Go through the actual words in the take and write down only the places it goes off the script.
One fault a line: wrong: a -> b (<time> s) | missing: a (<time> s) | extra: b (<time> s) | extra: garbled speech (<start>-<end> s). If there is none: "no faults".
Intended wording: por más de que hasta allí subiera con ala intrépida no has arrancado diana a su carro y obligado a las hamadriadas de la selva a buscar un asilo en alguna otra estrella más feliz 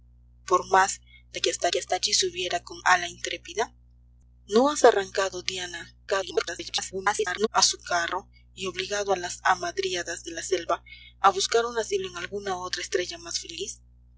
extra: que hasta (1.7 s)
extra: garbled speech (6.1-7.5 s)